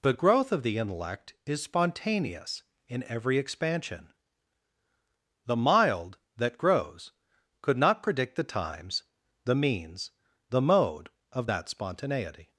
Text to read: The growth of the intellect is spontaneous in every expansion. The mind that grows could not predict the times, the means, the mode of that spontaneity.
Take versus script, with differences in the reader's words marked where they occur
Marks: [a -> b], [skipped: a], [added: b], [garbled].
The growth of the intellect is spontaneous in every expansion. The [mind -> mild] that grows could not predict the times, the means, the mode of that spontaneity.